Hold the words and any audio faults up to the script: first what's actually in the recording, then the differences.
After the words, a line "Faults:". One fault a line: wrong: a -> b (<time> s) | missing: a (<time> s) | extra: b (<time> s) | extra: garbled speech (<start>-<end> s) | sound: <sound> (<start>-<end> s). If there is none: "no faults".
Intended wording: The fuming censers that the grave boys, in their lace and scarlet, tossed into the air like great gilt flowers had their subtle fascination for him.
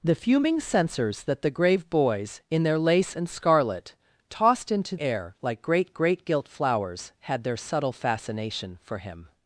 The fuming censers that the grave boys, in their lace and scarlet, tossed into air like great great gilt flowers had their subtle fascination for him.
Faults:
missing: the (5.0 s)
extra: great (5.9 s)